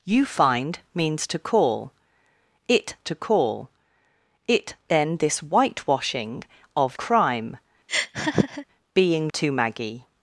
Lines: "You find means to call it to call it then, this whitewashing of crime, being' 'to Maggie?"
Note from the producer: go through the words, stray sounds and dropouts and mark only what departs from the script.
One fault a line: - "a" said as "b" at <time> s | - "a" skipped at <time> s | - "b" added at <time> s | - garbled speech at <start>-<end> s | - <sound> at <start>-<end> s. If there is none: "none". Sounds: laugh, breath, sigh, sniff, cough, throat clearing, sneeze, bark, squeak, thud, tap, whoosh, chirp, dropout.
- laugh at 7.9-8.7 s